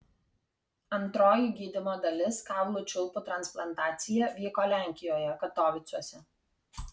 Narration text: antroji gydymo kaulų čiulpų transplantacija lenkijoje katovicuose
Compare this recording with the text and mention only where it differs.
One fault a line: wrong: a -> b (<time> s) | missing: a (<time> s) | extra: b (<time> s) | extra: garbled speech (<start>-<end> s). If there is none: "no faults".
extra: dalis (2.0 s)
extra: vyko (4.4 s)